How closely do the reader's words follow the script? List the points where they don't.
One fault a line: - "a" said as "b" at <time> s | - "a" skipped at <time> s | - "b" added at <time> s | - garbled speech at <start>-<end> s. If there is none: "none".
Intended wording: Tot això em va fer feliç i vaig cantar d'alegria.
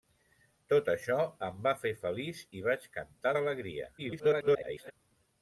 - garbled speech at 4.0-4.9 s